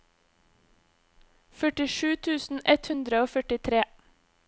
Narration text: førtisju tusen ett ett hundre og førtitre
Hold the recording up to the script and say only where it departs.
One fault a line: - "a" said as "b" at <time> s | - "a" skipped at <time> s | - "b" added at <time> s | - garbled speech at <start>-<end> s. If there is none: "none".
- "ett" skipped at 2.9 s